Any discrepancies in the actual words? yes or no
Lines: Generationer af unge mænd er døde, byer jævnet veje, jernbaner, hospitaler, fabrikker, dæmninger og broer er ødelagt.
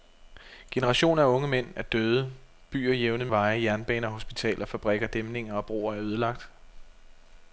no